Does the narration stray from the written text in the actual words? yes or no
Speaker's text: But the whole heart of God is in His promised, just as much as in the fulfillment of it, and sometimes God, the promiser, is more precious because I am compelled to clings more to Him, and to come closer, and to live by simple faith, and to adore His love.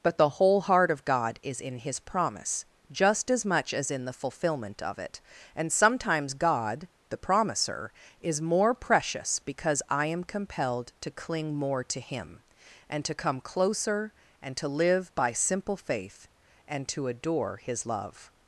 yes